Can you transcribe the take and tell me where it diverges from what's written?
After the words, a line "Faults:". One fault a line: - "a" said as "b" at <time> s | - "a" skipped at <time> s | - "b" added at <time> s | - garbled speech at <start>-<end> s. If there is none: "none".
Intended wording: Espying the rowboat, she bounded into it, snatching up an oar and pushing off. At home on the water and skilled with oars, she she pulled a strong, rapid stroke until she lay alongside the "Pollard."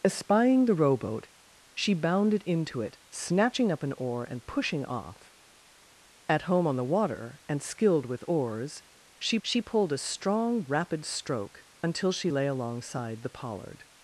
Espying the rowboat, she bounded into it, snatching up an oar and pushing off. At home on the water and skilled with oars, she she pulled a strong, rapid stroke until she lay alongside the "Pollard."
Faults:
none